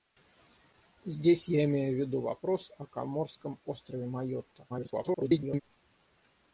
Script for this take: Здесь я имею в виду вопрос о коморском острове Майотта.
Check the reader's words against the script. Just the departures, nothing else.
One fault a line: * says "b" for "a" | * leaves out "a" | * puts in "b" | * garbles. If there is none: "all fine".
* garbles